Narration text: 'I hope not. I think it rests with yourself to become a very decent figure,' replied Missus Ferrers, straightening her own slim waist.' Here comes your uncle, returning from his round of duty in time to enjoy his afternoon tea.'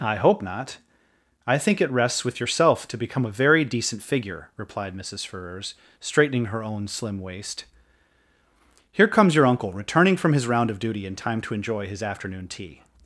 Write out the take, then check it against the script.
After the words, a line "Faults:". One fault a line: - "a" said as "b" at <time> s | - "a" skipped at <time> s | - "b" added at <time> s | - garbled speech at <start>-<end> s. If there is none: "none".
'I hope not. I think it rests with yourself to become a very decent figure,' replied Missus Ferrers, straightening her own slim waist.' Here comes your uncle, returning from his round of duty in time to enjoy his afternoon tea.'
Faults:
none